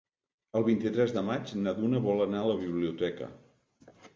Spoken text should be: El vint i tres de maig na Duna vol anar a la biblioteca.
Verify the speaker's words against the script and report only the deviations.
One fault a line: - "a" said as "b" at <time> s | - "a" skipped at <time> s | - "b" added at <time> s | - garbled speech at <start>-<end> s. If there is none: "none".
none